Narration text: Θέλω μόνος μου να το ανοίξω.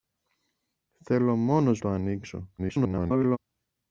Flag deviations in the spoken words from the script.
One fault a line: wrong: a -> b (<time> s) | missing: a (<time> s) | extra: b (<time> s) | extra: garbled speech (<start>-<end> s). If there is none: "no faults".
missing: μου να (1.8 s)
extra: garbled speech (2.6-3.4 s)